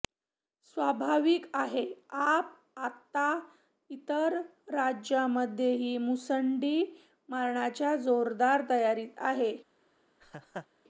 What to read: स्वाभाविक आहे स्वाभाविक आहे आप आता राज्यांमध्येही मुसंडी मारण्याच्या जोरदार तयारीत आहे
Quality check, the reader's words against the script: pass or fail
fail